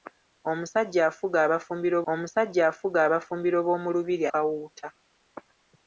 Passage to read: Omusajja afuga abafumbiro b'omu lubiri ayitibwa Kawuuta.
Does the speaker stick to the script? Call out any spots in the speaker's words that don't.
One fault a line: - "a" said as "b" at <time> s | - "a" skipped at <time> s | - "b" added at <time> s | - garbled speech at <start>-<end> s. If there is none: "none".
- "omusajja afuga abafumbiro" added at 2.1 s
- "ayitibwa" skipped at 4.2 s